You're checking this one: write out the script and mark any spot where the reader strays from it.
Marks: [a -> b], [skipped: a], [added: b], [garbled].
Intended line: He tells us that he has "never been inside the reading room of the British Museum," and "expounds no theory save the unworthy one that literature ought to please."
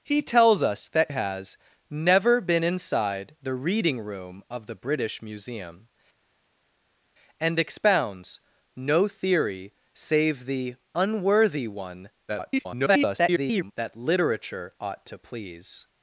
He tells us that [skipped: he] has "never been inside the reading room of the British Museum," and "expounds no theory save the unworthy one [garbled] that literature ought to please."